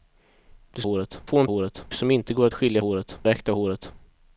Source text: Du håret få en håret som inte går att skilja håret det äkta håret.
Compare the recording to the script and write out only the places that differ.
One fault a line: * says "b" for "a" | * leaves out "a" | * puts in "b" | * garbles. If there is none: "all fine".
all fine